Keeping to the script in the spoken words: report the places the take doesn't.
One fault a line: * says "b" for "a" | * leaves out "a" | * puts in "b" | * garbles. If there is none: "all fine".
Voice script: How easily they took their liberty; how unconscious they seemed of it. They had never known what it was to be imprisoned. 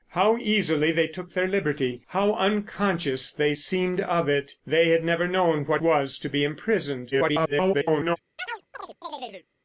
* leaves out "it"
* garbles